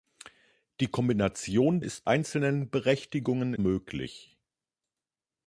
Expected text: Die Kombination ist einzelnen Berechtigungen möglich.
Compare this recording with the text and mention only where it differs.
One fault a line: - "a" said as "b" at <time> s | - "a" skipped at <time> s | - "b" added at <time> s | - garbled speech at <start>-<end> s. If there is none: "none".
none